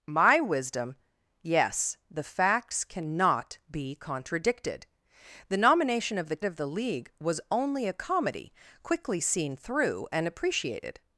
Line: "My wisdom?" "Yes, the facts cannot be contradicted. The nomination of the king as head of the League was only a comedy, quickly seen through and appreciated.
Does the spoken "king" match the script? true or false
false